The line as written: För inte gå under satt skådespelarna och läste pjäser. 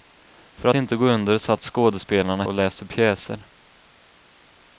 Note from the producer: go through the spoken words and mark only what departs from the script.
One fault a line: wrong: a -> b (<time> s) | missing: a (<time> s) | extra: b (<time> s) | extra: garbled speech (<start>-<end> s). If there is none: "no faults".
no faults